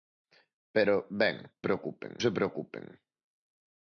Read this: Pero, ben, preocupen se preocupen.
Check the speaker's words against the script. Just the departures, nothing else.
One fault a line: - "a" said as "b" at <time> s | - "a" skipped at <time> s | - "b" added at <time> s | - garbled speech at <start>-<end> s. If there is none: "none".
none